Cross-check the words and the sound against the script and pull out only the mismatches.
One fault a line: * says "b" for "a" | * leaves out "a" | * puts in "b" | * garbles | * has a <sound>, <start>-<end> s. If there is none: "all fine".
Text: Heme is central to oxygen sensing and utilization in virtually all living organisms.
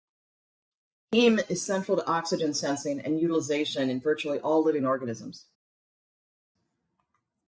all fine